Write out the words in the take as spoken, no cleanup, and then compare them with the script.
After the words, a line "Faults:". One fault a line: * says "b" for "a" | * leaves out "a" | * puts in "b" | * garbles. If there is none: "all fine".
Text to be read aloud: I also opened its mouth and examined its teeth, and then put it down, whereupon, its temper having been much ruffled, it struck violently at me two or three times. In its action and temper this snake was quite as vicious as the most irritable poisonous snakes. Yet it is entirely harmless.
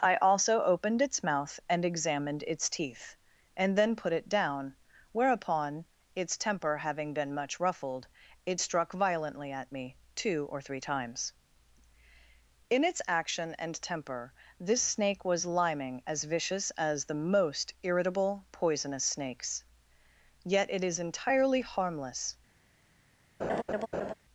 I also opened its mouth and examined its teeth, and then put it down, whereupon, its temper having been much ruffled, it struck violently at me two or three times. In its action and temper this snake was liming as vicious as the most irritable poisonous snakes. Yet it is entirely harmless.
Faults:
* says "liming" for "quite"